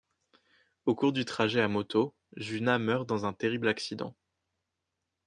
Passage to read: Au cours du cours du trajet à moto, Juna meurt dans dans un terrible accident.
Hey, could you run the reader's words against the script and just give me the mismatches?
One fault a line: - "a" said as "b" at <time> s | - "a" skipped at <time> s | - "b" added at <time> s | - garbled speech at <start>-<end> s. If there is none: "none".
- "cours du" skipped at 1.2 s
- "dans" skipped at 3.2 s